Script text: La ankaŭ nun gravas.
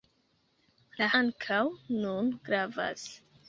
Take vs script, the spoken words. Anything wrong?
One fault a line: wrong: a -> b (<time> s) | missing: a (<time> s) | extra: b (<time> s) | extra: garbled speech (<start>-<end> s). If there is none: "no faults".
no faults